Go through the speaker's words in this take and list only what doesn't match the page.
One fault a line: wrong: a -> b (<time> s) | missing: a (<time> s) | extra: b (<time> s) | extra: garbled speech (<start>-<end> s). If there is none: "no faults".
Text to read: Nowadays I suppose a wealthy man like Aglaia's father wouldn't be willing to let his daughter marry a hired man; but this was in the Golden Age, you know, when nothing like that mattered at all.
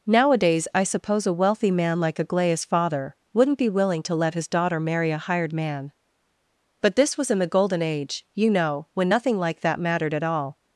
no faults